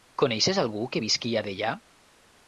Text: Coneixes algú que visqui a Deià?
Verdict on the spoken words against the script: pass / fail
pass